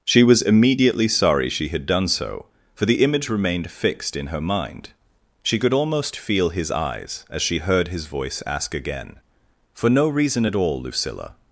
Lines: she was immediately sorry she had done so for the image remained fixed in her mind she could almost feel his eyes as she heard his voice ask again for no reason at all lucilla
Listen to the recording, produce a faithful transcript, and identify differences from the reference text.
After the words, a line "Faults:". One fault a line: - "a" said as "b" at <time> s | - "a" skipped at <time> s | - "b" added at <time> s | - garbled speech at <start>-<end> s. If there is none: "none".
she was immediately sorry she had done so for the image remained fixed in her mind she could almost feel his eyes as she heard his voice ask again for no reason at all lucilla
Faults:
none